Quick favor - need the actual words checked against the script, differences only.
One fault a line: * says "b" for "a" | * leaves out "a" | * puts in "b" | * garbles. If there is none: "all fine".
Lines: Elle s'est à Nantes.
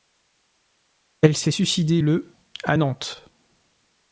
* puts in "suicidée le"